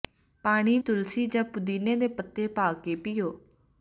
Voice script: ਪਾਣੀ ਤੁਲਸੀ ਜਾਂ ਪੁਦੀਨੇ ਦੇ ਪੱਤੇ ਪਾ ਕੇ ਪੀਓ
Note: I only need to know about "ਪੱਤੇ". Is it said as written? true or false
true